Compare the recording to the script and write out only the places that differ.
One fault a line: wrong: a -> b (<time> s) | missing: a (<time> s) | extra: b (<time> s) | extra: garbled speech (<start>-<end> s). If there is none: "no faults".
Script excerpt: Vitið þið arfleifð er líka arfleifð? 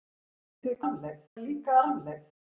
no faults